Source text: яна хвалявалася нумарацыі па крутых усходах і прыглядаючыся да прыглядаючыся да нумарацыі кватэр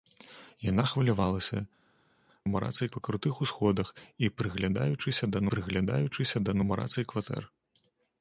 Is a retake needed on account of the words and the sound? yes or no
no